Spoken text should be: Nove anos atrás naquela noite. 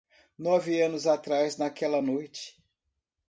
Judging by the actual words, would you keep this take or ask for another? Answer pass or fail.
pass